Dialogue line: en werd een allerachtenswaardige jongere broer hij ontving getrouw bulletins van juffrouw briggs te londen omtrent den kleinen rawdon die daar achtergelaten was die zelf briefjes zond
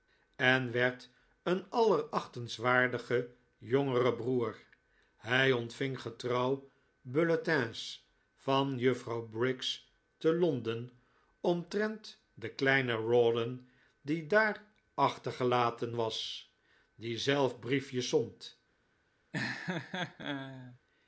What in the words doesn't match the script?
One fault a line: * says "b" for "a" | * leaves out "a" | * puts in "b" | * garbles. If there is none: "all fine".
all fine